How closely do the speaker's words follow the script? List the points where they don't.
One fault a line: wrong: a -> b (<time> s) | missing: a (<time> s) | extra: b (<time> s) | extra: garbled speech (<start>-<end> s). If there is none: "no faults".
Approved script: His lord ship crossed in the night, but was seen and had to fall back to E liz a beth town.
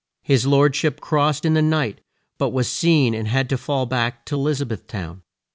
no faults